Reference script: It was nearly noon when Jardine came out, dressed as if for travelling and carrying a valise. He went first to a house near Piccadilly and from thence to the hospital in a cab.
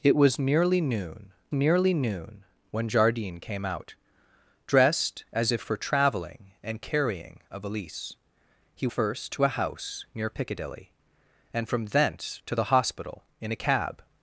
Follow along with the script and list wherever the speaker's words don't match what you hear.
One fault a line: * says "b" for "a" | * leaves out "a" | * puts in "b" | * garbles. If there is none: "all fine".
* puts in "nearly noon"
* leaves out "went"